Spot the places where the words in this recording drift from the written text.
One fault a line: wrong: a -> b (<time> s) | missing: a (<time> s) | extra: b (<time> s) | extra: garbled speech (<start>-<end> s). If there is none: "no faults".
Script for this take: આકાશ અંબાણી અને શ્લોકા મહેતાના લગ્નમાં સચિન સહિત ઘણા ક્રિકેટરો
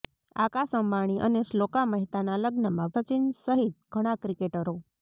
no faults